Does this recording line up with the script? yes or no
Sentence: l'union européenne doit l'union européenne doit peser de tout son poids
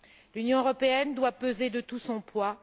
no